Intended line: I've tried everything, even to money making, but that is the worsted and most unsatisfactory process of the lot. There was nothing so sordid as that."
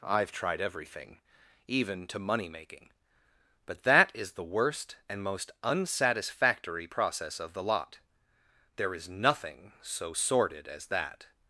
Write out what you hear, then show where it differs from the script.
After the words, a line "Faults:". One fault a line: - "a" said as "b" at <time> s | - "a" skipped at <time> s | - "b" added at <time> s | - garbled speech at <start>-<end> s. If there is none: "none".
I've tried everything, even to money making, but that is the worst and most unsatisfactory process of the lot. There is nothing so sordid as that."
Faults:
- "worsted" said as "worst" at 4.4 s
- "was" said as "is" at 8.9 s